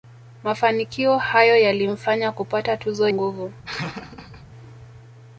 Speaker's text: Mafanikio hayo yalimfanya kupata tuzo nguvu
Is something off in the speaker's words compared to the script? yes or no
no